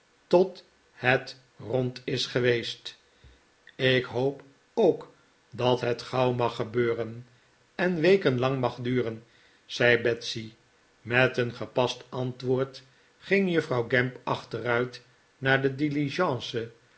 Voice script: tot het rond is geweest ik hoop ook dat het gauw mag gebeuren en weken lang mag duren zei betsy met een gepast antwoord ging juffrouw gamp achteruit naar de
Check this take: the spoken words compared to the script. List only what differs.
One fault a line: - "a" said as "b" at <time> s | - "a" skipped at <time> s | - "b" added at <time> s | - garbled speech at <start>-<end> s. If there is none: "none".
none